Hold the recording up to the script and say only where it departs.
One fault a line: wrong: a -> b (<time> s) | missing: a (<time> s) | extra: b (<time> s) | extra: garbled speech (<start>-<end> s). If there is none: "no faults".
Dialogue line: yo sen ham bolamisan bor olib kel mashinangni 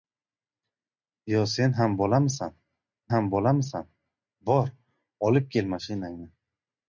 extra: ham bolamisan (3.1 s)